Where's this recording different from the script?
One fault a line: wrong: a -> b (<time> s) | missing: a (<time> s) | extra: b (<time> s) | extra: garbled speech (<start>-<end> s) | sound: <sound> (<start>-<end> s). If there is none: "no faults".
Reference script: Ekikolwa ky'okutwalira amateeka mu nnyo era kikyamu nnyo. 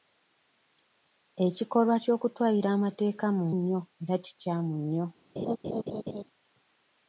sound: laugh (5.4-6.2 s)